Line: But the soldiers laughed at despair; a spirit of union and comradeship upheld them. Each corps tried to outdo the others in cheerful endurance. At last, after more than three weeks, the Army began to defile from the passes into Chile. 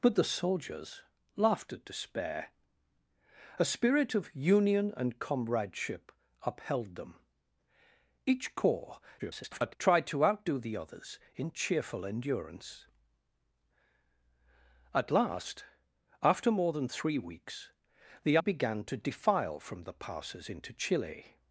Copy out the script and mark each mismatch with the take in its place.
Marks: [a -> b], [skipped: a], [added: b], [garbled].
But the soldiers laughed at despair; a spirit of union and comradeship upheld them. Each corps [garbled] tried to outdo the others in cheerful endurance. At last, after more than three weeks, the [skipped: Army] began to defile from the passes into Chile.